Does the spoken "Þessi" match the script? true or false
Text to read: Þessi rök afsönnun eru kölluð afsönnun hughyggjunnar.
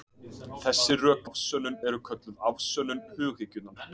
true